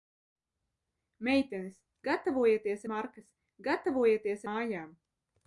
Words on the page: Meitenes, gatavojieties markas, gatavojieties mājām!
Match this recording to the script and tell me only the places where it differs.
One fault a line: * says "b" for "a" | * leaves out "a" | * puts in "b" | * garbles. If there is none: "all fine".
all fine